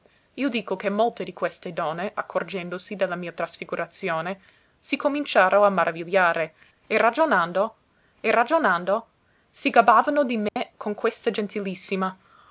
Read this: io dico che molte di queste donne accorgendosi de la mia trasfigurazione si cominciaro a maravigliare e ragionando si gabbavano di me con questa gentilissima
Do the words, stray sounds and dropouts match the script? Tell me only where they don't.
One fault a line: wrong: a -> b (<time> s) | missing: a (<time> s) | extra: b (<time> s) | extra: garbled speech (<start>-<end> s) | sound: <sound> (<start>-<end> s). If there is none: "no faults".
extra: e ragionando (8.2 s)
sound: dropout (10.5-10.6 s)